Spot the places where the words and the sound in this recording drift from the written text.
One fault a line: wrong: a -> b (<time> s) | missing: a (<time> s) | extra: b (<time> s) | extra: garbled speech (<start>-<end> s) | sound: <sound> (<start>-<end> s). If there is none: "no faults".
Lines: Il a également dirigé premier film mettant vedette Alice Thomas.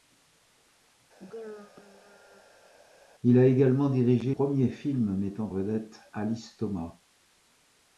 sound: throat clearing (1.2-2.7 s)